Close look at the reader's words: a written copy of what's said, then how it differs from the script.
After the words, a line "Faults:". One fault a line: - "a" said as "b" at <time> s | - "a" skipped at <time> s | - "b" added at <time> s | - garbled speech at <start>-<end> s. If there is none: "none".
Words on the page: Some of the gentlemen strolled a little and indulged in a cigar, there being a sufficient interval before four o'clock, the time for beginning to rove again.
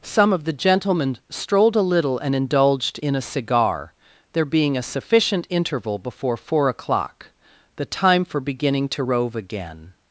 Some of the gentlemen strolled a little and indulged in a cigar, there being a sufficient interval before four o'clock, the time for beginning to rove again.
Faults:
none